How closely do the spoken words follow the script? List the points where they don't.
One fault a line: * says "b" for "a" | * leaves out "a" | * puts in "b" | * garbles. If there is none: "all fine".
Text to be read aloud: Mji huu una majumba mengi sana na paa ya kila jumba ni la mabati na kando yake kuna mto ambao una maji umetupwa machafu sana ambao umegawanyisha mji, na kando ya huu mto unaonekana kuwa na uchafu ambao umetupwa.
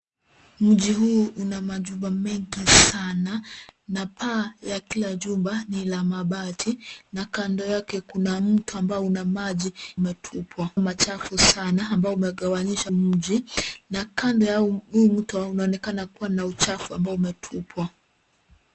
all fine